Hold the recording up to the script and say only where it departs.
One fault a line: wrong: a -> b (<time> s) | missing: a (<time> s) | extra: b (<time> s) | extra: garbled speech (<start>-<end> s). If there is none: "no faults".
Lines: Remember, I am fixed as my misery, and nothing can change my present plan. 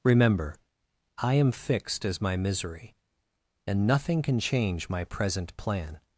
no faults